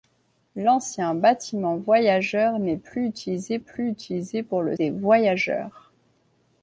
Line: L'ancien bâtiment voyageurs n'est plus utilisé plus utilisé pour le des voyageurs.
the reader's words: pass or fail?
pass